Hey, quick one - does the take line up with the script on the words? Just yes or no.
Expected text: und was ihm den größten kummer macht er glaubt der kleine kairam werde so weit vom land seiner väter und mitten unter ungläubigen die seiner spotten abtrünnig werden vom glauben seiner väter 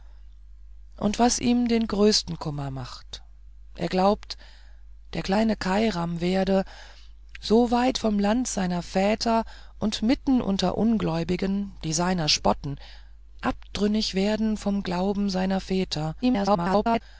no